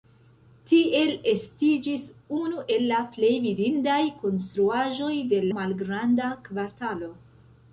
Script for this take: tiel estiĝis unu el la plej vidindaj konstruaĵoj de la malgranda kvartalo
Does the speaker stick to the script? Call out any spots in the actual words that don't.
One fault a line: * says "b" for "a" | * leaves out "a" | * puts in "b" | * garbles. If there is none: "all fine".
* leaves out "la"